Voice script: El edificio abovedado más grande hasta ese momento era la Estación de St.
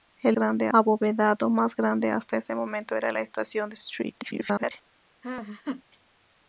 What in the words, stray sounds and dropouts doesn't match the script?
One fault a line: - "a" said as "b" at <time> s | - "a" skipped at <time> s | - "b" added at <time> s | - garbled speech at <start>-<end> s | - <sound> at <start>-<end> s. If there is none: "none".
- "edificio" said as "grande" at 0.3 s
- garbled speech at 4.2-4.7 s
- laugh at 5.2-5.8 s